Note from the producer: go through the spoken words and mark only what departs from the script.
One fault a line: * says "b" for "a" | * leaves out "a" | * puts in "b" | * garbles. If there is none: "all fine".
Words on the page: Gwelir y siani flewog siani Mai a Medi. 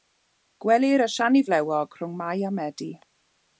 * says "rhwng" for "siani"